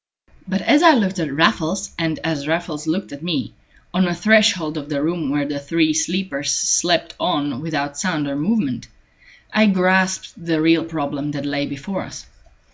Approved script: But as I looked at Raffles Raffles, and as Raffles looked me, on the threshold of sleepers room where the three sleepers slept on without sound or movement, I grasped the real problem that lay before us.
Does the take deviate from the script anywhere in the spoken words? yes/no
yes